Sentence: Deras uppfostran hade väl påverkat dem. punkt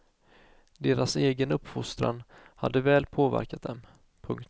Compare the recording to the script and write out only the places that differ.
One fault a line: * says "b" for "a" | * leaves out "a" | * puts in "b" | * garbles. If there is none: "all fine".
* puts in "egen"